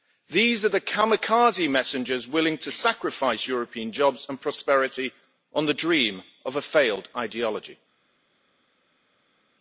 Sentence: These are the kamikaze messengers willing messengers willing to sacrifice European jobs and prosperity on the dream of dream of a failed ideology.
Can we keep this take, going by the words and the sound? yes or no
no